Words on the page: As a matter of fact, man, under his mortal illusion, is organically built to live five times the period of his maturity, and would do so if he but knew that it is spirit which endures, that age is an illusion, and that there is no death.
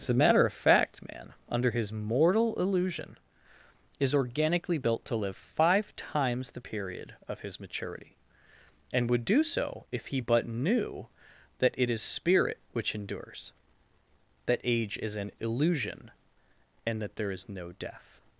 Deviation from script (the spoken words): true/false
false